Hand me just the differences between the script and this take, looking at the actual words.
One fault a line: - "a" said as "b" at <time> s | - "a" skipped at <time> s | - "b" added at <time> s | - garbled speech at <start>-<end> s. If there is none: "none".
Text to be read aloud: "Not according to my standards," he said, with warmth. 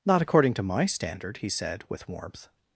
- "standards" said as "standard" at 0.8 s